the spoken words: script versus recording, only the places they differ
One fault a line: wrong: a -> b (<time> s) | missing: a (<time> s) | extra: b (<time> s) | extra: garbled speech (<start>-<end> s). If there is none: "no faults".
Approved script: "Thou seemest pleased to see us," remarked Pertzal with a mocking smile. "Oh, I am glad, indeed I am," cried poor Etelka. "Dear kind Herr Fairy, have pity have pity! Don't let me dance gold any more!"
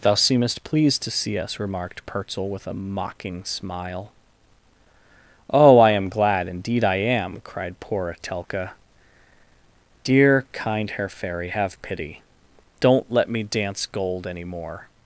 missing: have pity (12.2 s)